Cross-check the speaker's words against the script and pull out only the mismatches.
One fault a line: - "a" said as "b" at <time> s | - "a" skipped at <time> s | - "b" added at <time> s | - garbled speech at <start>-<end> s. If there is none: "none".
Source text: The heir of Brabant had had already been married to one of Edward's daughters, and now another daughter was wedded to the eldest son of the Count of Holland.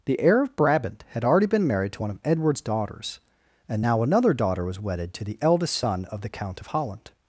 - "had" skipped at 1.2 s